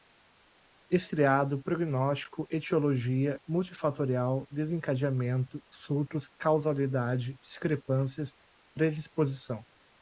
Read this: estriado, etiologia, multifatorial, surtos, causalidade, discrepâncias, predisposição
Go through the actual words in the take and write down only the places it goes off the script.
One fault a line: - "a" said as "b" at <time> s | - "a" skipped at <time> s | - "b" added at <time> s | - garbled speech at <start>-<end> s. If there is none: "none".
- "prognóstico" added at 1.6 s
- "desencadeamento" added at 4.5 s